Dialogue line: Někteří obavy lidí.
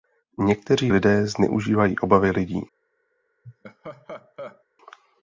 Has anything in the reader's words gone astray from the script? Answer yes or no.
yes